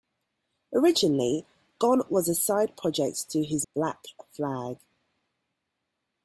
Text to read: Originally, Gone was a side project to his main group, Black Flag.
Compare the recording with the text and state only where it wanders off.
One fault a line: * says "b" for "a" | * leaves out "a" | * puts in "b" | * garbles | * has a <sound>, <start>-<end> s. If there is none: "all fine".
* leaves out "main group"